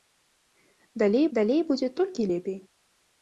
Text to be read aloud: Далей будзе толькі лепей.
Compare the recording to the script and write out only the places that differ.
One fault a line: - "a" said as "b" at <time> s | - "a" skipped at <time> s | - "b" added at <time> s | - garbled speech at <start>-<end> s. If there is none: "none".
- "далей" added at 1.4 s